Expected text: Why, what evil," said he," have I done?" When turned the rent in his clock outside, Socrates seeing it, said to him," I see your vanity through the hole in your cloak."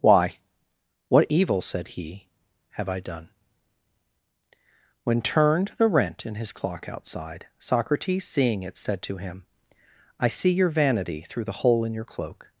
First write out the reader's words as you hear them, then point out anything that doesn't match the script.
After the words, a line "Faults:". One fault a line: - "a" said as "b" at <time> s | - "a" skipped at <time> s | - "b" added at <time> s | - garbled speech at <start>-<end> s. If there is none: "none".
Why, what evil," said he," have I done?" When turned the rent in his clock outside, Socrates seeing it, said to him," I see your vanity through the hole in your cloak."
Faults:
none